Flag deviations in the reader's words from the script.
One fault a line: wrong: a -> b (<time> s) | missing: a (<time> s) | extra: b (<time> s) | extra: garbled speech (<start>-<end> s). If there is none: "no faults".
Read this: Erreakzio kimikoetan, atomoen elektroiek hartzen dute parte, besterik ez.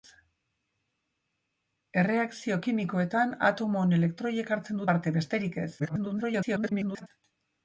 missing: dute (4.8 s)
extra: garbled speech (5.8-7.1 s)